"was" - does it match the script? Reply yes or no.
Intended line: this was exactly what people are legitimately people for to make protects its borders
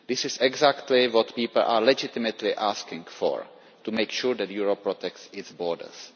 no